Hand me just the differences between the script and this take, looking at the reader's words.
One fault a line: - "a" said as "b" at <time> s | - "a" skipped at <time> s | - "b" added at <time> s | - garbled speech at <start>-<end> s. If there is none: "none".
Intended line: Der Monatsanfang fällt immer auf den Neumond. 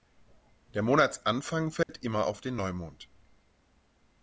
none